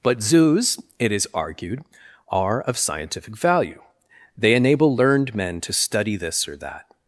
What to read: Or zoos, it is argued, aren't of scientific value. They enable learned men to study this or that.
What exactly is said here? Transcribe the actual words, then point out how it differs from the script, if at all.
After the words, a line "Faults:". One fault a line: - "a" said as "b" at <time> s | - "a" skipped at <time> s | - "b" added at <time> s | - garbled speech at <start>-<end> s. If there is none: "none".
But zoos, it is argued, are of scientific value. They enable learned men to study this or that.
Faults:
- "Or" said as "But" at 0.0 s
- "aren't" said as "are" at 2.3 s